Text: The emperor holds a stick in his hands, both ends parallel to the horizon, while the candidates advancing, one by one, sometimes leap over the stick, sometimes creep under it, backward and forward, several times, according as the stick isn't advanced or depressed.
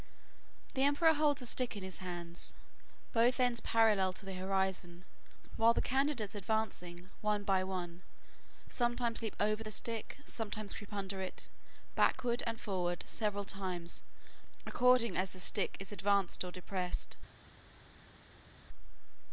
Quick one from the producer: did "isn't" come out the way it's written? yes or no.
no